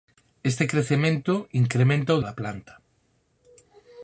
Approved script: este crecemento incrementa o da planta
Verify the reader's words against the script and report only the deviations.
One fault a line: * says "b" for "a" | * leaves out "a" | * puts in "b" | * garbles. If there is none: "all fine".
all fine